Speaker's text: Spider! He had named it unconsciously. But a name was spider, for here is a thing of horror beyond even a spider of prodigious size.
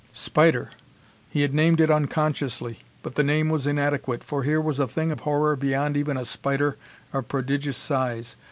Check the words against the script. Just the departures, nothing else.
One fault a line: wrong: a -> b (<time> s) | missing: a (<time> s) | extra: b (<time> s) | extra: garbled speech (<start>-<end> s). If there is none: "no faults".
wrong: a -> the (3.1 s)
wrong: spider -> inadequate (3.7 s)
wrong: is -> was (4.6 s)